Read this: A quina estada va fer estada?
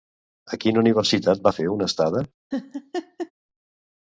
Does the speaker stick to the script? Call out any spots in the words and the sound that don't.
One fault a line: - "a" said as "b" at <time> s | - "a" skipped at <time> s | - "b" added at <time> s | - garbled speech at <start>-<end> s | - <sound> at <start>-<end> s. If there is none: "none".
- "estada" said as "universitat" at 0.8 s
- "una" added at 1.8 s
- laugh at 2.5-3.3 s